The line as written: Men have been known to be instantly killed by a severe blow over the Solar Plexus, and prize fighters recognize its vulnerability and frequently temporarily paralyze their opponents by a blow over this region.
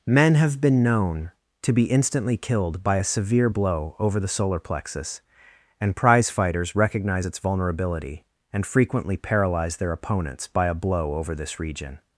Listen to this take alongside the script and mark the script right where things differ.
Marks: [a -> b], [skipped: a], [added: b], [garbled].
Men have been known to be instantly killed by a severe blow over the Solar Plexus, and prize fighters recognize its vulnerability and frequently [skipped: temporarily] paralyze their opponents by a blow over this region.